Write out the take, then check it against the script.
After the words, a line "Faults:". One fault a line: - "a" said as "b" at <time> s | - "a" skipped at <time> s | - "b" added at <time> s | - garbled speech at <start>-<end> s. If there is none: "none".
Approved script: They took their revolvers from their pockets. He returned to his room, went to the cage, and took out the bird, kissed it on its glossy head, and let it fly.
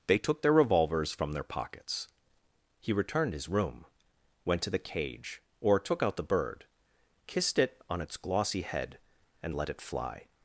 They took their revolvers from their pockets. He returned his room, went to the cage, or took out the bird, kissed it on its glossy head, and let it fly.
Faults:
- "to" skipped at 3.3 s
- "and" said as "or" at 5.6 s